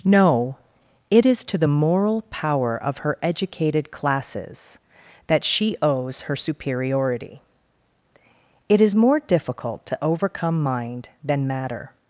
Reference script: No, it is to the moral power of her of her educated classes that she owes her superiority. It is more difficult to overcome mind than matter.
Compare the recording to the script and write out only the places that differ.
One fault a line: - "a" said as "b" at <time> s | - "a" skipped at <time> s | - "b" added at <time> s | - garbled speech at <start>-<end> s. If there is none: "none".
- "of her" skipped at 3.2 s